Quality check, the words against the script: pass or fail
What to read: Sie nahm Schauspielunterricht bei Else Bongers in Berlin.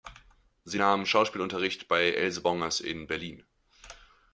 pass